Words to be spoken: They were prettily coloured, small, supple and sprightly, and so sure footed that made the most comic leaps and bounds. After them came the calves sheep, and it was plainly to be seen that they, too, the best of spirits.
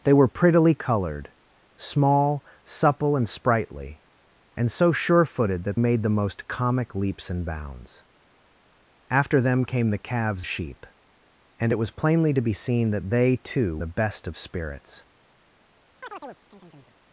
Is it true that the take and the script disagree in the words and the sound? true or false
true